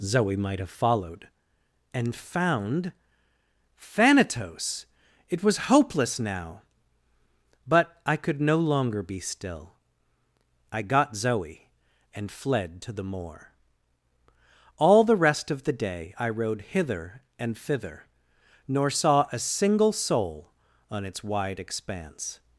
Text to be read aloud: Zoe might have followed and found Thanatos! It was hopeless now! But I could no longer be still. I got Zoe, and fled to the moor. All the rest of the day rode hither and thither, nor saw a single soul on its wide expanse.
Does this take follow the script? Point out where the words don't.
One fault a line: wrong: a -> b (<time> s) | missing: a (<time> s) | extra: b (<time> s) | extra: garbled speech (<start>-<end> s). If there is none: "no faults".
extra: I (16.2 s)